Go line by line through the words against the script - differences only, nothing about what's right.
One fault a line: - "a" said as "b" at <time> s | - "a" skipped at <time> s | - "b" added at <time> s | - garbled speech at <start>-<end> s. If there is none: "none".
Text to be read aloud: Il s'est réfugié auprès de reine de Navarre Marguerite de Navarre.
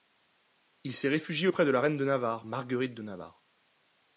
- "la" added at 1.7 s